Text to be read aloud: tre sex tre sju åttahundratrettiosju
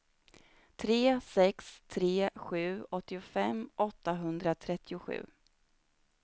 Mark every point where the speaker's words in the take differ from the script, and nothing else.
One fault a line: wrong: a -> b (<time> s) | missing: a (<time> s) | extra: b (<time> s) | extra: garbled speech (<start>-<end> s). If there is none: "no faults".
extra: åttiofem (2.9 s)